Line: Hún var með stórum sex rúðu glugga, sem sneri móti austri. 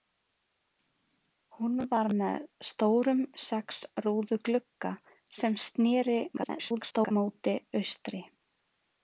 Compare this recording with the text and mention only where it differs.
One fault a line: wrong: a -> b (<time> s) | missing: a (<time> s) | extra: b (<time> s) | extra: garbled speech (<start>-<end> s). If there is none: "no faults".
extra: garbled speech (6.4-7.1 s)